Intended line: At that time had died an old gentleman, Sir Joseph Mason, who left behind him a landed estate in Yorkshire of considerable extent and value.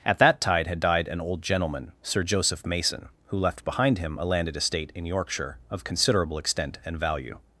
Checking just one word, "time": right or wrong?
wrong